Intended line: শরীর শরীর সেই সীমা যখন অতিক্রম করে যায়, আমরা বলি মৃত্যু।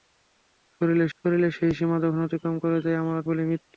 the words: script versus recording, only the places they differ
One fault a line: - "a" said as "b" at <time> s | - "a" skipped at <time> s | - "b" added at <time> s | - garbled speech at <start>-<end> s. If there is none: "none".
none